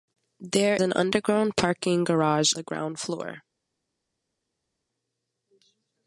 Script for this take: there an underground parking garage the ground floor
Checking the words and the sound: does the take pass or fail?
pass